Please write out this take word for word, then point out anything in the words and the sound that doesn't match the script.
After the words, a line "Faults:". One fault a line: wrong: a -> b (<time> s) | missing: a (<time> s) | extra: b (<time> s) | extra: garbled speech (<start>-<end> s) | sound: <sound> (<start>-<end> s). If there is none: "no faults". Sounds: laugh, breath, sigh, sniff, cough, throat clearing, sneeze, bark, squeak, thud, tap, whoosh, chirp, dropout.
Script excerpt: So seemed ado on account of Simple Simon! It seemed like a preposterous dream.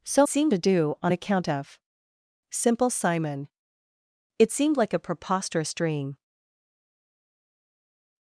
So seemed ado on account of Simple Simon! It seemed like a preposterous dream.
Faults:
no faults